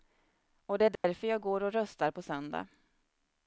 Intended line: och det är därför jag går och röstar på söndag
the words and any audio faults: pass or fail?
fail